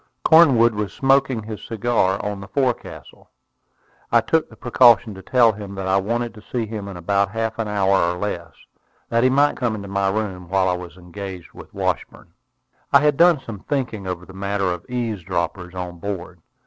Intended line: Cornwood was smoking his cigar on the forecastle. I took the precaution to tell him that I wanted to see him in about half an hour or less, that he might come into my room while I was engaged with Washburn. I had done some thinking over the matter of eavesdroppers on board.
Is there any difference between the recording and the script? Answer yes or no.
no